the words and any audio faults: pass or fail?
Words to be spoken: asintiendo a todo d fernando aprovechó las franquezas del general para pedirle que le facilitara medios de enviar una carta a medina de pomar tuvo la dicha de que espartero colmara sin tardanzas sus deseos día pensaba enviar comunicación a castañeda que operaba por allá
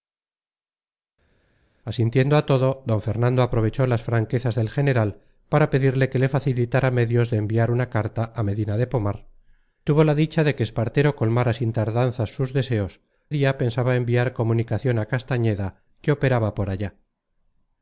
pass